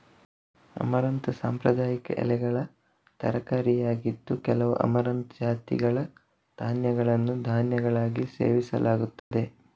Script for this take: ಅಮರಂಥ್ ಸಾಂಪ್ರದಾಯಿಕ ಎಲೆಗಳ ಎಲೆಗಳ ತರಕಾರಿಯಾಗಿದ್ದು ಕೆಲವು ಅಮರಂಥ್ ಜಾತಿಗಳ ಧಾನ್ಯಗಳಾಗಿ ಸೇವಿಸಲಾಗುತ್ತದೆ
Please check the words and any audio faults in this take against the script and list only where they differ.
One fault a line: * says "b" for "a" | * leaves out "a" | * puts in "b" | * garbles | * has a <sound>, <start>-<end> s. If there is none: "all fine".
* leaves out "ಎಲೆಗಳ"
* puts in "ಧಾನ್ಯಗಳನ್ನು"
* has a dropout, 9.2-9.3 s